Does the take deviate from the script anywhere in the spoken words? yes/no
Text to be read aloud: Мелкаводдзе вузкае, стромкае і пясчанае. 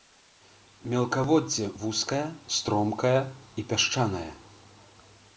no